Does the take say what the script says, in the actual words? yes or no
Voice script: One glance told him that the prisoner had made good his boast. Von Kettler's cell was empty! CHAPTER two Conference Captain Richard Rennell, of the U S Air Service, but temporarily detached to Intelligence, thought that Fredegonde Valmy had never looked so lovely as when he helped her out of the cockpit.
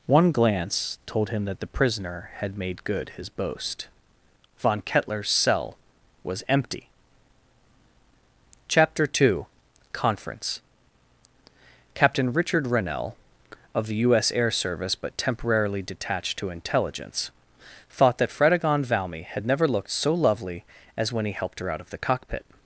yes